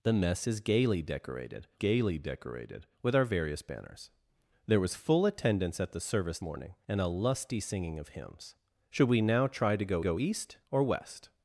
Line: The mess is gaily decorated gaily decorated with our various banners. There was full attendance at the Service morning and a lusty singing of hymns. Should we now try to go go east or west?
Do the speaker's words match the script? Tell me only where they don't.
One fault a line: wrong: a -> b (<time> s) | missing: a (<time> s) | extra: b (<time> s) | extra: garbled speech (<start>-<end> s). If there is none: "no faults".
no faults